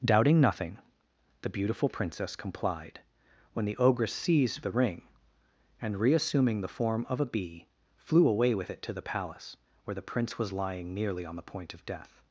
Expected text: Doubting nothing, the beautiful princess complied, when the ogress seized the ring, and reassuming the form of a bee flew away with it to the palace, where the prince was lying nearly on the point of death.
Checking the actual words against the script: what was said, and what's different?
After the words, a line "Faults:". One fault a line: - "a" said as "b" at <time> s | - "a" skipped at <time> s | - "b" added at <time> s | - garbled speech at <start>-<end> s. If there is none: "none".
Doubting nothing, the beautiful princess complied, when the ogress seized the ring, and reassuming the form of a bee flew away with it to the palace, where the prince was lying nearly on the point of death.
Faults:
none